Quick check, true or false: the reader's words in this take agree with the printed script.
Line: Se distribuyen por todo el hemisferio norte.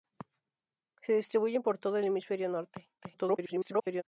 false